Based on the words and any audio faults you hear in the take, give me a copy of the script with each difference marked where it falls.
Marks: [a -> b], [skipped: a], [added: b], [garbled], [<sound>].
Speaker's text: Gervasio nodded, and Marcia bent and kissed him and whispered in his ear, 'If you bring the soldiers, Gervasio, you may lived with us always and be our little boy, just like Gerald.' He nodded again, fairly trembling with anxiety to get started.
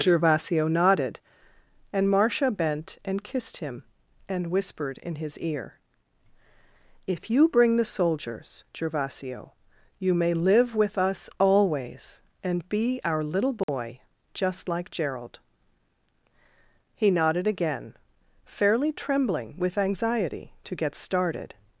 Gervasio nodded, and Marcia bent and kissed him and whispered in his ear, 'If you bring the soldiers, Gervasio, you may [lived -> live] with us always and be our little boy, [dropout] just like Gerald.' He nodded again, fairly trembling with anxiety to get started.